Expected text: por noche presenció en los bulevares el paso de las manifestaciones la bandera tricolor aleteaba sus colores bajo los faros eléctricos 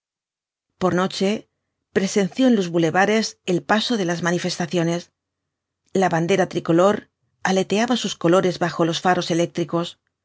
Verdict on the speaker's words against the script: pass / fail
pass